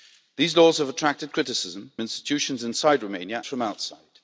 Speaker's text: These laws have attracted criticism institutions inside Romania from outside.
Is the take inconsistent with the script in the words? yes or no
no